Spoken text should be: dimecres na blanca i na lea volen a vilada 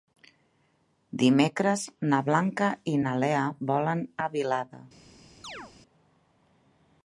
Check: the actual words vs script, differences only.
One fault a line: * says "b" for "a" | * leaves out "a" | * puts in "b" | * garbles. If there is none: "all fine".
all fine